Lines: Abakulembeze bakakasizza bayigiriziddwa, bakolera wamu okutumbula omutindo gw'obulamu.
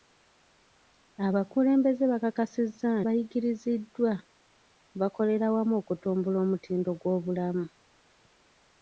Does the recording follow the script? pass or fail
pass